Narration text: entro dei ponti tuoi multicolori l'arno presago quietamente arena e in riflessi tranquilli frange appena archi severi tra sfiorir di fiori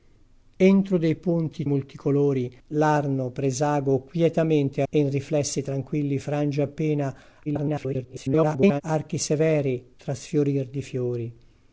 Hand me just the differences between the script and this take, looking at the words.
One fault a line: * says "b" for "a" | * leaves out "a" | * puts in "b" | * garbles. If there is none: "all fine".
* leaves out "tuoi"
* leaves out "arena"
* garbles